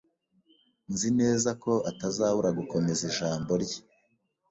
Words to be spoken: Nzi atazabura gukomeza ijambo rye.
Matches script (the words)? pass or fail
fail